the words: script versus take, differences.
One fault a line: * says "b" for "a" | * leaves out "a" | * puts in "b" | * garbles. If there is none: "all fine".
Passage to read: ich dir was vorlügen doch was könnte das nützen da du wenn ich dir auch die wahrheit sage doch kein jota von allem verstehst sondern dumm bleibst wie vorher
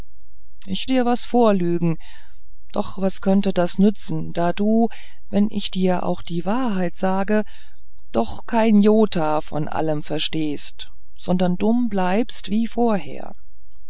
all fine